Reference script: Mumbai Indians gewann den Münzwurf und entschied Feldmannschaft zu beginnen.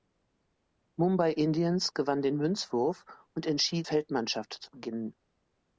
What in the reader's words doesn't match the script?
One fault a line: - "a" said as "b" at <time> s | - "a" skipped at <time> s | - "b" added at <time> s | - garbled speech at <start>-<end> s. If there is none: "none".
none